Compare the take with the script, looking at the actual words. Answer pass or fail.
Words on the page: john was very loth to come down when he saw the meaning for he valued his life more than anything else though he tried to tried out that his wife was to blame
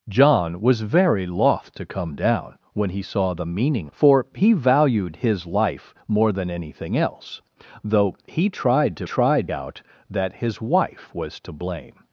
pass